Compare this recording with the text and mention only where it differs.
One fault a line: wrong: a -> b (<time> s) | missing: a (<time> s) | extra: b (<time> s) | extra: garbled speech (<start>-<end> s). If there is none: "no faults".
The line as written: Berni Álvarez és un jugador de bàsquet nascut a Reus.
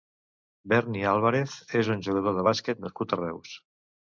no faults